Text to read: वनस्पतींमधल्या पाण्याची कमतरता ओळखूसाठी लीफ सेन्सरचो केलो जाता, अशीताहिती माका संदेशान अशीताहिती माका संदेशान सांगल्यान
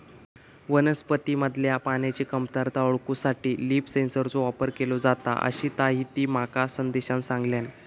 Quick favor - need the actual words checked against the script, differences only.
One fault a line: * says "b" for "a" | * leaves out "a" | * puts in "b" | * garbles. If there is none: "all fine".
* puts in "वापर"
* leaves out "अशीताहिती माका संदेशान"